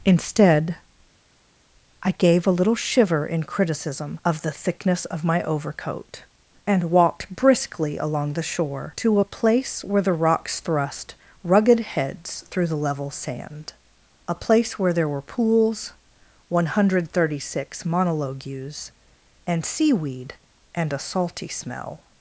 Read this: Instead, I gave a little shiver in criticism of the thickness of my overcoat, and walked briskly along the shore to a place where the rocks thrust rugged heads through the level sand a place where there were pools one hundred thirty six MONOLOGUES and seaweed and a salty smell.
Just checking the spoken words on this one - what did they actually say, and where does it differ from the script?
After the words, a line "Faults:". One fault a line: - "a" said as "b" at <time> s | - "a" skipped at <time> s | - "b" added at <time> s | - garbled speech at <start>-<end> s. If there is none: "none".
Instead, I gave a little shiver in criticism of the thickness of my overcoat, and walked briskly along the shore to a place where the rocks thrust rugged heads through the level sand a place where there were pools one hundred thirty six MONOLOGUES and seaweed and a salty smell.
Faults:
none